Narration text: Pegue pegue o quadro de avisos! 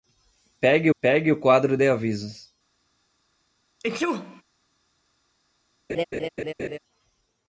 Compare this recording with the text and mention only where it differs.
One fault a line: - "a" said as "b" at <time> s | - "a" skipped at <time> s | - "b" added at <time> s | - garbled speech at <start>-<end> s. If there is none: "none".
none